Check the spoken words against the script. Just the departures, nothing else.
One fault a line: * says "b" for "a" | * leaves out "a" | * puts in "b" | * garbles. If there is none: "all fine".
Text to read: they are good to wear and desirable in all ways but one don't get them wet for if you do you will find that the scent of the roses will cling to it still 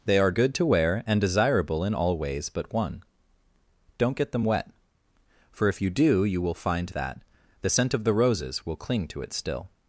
all fine